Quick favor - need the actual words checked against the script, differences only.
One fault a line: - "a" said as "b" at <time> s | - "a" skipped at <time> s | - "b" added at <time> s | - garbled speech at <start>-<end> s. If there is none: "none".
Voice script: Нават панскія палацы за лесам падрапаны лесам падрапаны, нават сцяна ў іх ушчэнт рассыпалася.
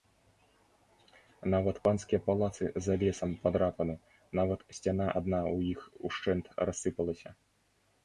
- "лесам падрапаны" skipped at 4.0 s
- "адна" added at 5.2 s